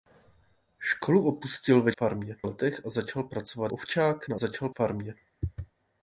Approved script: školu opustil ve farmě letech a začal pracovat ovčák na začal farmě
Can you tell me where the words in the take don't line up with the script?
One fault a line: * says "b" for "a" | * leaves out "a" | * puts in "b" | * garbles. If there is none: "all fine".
all fine